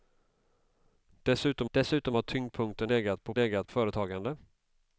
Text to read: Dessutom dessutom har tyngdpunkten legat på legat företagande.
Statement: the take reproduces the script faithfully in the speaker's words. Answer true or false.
true